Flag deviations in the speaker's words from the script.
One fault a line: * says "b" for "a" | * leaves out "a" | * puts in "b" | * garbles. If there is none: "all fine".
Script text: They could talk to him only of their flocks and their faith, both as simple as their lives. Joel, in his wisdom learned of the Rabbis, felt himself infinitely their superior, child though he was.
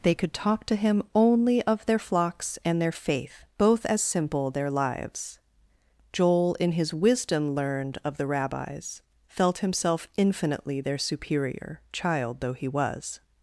* leaves out "as"